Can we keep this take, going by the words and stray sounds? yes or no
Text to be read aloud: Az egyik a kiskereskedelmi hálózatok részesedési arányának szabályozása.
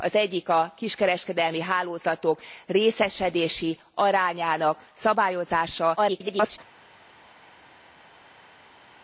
no